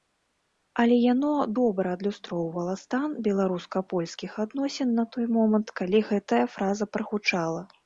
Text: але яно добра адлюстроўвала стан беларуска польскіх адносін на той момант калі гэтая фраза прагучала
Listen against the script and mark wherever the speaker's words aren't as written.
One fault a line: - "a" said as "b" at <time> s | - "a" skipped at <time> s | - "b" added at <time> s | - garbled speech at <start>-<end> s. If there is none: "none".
none